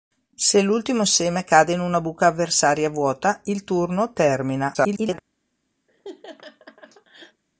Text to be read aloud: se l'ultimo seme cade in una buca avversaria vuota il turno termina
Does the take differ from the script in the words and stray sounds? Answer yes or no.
yes